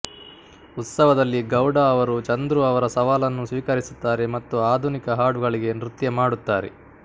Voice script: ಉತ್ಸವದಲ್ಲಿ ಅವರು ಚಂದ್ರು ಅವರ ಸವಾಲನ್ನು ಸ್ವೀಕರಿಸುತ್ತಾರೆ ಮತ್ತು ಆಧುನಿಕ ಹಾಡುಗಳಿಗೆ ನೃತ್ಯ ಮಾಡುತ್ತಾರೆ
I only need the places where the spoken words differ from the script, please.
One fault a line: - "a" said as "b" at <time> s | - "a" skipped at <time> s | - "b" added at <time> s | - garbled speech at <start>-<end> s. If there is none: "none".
- "ಗೌಡ" added at 1.5 s